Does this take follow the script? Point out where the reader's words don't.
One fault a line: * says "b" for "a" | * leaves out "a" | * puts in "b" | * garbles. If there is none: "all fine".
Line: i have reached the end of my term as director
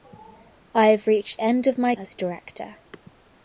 * leaves out "the"
* leaves out "term"